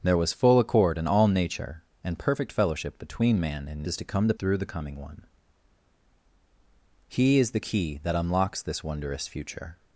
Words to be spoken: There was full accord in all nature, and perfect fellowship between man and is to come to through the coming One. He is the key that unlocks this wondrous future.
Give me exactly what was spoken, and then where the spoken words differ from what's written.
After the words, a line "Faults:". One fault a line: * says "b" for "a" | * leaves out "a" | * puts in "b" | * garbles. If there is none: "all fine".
There was full accord in all nature, and perfect fellowship between man and is to come to through the coming One. He is the key that unlocks this wondrous future.
Faults:
all fine